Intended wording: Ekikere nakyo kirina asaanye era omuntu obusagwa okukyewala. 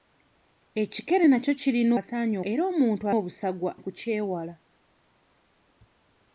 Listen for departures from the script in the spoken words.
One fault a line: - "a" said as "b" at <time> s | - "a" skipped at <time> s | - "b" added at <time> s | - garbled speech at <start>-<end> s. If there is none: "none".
none